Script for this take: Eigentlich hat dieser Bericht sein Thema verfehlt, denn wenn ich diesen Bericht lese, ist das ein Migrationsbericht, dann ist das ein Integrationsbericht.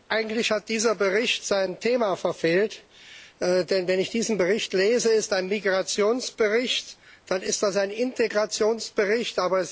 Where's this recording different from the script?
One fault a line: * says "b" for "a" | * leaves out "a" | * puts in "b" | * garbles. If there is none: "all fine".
* leaves out "das"